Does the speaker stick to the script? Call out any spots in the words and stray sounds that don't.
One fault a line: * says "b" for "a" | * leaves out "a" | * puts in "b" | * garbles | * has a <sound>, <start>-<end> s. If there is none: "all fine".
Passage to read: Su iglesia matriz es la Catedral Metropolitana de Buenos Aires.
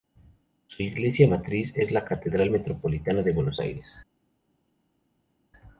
all fine